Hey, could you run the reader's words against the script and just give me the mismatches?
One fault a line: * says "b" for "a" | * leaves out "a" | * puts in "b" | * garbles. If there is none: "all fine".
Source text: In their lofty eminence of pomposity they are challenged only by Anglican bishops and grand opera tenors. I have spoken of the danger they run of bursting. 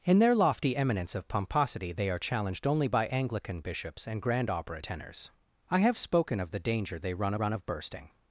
* puts in "run"